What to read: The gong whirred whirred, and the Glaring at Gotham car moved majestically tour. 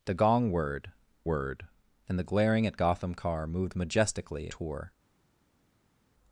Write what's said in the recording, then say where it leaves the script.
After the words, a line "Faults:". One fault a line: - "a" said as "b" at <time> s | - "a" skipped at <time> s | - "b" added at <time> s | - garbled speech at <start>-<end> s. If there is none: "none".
The gong whirred whirred, and the Glaring at Gotham car moved majestically tour.
Faults:
none